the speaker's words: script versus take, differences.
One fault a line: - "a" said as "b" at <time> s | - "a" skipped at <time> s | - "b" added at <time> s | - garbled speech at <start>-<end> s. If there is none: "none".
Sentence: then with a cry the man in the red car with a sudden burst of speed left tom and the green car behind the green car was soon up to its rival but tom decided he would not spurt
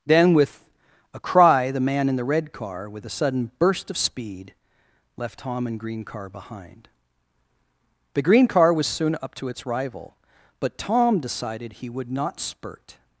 - "the" skipped at 5.8 s